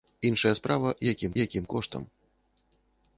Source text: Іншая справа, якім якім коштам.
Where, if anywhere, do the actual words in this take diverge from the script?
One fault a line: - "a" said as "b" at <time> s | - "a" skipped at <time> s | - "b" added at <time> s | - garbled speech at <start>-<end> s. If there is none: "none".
none